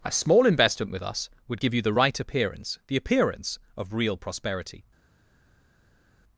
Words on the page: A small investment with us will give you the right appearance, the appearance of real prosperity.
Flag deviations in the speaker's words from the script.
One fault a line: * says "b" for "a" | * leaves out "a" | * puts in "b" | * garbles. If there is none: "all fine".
* says "would" for "will"